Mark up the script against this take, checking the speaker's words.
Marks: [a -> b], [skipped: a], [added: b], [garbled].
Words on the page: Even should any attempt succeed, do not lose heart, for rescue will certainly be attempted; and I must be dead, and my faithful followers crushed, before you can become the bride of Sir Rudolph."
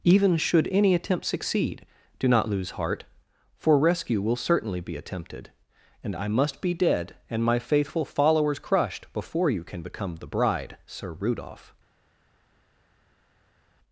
Even should any attempt succeed, do not lose heart, for rescue will certainly be attempted; and I must be dead, and my faithful followers crushed, before you can become the bride [skipped: of] Sir Rudolph."